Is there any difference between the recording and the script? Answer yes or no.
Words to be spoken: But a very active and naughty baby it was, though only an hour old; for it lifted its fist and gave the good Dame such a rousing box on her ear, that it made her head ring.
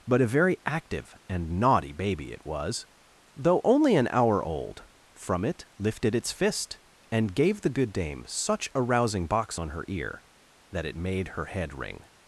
yes